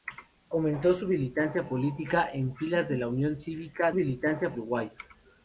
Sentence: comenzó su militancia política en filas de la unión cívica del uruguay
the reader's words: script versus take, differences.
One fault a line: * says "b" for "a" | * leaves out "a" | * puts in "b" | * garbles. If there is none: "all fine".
* says "militancia" for "del"